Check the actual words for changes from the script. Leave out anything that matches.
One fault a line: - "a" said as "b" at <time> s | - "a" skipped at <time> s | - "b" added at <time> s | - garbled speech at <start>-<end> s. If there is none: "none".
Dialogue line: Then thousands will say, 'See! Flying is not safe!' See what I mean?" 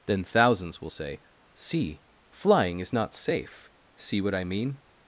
none